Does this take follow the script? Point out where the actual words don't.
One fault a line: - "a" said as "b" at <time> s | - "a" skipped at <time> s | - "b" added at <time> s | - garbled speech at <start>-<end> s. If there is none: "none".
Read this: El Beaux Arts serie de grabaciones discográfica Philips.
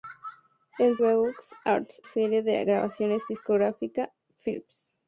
none